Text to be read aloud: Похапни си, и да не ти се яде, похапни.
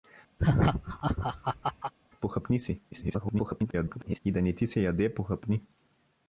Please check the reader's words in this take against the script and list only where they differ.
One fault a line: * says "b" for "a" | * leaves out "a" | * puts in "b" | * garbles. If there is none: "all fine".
* garbles